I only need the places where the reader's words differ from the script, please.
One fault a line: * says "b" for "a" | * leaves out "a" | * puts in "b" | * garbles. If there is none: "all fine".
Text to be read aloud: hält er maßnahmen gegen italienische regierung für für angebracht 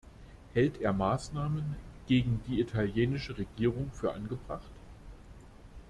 * puts in "die"
* leaves out "für"